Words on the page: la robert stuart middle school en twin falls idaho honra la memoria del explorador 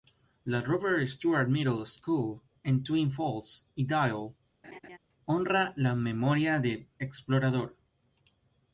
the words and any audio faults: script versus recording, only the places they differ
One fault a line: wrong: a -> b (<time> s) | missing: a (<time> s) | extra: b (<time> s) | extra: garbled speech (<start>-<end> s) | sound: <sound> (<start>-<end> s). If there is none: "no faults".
sound: laugh (4.6-5.0 s)